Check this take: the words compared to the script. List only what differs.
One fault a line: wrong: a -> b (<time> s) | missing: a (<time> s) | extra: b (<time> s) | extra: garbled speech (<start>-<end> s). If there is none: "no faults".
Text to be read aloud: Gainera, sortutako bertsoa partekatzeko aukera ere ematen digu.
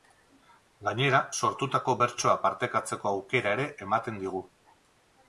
no faults